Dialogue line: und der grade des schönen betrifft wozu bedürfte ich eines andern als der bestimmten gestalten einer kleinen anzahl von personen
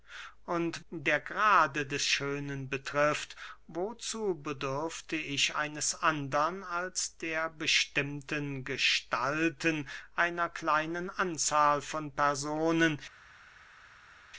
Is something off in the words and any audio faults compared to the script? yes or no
no